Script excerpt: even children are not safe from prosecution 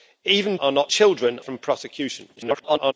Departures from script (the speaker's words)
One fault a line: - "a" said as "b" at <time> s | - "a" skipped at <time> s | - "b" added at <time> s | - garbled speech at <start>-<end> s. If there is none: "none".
- "children" skipped at 0.6 s
- "safe" said as "children" at 0.9 s
- garbled speech at 2.4-2.9 s